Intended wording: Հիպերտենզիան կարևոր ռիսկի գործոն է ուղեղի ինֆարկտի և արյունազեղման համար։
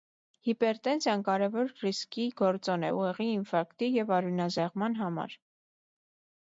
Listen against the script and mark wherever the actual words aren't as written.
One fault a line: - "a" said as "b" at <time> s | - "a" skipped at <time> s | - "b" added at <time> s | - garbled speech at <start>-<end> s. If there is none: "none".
none